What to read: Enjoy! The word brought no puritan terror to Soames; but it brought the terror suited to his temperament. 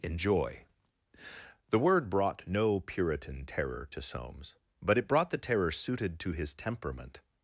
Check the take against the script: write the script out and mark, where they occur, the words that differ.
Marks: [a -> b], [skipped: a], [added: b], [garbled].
Enjoy! The word brought no puritan terror to Soames; but it brought the terror suited to his temperament.